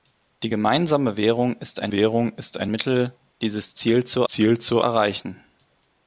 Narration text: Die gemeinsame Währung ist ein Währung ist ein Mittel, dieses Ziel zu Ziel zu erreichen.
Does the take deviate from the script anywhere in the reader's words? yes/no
no